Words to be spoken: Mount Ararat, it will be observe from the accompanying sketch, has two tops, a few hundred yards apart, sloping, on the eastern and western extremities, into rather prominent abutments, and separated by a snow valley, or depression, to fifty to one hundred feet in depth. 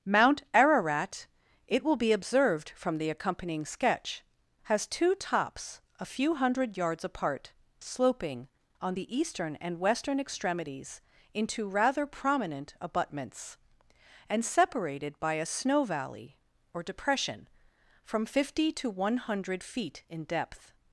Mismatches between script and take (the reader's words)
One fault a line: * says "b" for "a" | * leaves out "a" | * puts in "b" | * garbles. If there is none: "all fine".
* says "observed" for "observe"
* says "from" for "to"